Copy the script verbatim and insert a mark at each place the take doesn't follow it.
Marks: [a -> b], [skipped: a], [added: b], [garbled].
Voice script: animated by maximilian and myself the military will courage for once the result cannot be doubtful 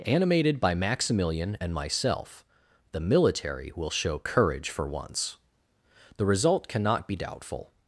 animated by maximilian and myself the military will [added: show] courage for once the result cannot be doubtful